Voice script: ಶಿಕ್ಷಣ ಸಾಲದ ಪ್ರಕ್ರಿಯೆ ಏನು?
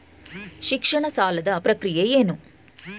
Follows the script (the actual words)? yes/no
yes